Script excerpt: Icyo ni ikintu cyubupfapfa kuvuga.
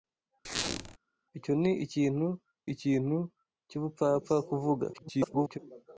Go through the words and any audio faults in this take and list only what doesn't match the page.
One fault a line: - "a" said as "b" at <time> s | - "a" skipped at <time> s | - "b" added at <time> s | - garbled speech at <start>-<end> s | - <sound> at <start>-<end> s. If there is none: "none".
- squeak at 0.4-1.0 s
- "ikintu" added at 2.7 s
- garbled speech at 4.9-5.6 s